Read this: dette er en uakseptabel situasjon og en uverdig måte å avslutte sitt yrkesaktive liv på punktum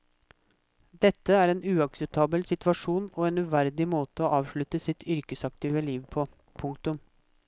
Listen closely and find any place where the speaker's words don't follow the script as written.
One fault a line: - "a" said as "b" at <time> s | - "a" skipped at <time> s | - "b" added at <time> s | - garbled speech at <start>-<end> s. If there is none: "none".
none